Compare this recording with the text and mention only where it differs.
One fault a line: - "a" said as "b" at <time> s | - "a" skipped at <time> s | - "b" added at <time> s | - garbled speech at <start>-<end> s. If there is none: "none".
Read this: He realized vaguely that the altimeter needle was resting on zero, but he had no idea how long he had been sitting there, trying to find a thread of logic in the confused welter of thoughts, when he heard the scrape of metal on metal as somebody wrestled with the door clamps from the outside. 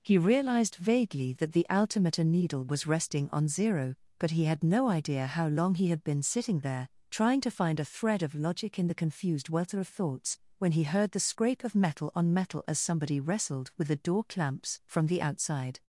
none